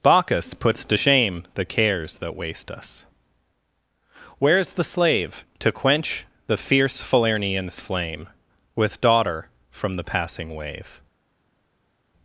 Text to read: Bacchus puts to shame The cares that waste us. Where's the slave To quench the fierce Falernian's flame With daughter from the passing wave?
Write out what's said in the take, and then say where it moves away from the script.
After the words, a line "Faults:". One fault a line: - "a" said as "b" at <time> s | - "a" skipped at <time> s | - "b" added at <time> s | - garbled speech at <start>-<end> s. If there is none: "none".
Bacchus puts to shame The cares that waste us. Where's the slave To quench the fierce Falernian's flame With daughter from the passing wave?
Faults:
none